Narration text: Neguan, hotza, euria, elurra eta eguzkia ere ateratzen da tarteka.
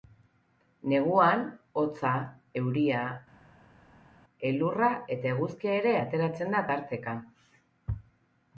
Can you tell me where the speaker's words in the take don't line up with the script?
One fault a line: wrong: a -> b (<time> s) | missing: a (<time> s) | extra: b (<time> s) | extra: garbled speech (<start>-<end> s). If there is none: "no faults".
no faults